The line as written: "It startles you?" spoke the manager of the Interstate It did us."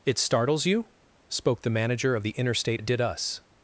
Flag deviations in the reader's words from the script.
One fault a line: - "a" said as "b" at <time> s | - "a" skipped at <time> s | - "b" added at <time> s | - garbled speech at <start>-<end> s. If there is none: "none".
none